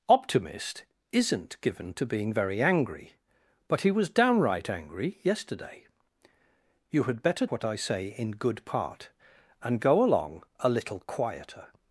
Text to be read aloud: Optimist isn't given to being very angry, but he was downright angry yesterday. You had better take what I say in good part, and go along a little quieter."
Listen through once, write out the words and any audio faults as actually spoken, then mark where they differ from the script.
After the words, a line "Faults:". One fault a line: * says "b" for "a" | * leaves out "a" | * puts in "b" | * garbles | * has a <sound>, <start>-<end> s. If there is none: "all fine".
Optimist isn't given to being very angry, but he was downright angry yesterday. You had better what I say in good part, and go along a little quieter."
Faults:
* leaves out "take"